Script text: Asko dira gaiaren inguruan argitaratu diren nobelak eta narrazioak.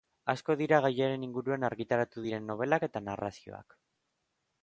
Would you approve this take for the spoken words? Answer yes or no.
yes